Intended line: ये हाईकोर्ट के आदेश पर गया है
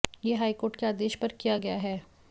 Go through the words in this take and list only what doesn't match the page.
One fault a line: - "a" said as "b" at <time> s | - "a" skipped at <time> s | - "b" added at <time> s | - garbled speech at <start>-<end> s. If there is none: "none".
- "किया" added at 1.4 s